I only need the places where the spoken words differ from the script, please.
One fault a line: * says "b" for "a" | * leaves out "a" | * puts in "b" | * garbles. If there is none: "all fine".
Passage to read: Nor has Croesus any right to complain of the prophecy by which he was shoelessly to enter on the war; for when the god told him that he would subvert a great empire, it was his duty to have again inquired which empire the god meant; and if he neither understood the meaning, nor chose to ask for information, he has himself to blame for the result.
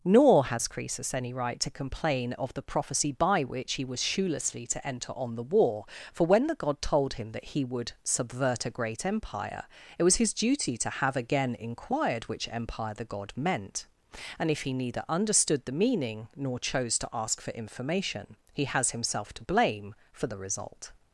all fine